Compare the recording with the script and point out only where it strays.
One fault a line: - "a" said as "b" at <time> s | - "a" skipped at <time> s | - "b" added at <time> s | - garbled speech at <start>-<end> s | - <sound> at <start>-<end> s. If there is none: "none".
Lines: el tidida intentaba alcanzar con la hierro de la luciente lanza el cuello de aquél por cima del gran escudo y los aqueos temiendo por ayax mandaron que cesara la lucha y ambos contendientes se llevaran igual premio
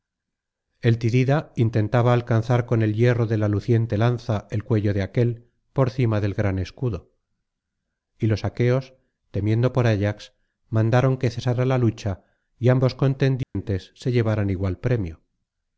- "la" said as "el" at 2.8 s
- dropout at 13.4-13.6 s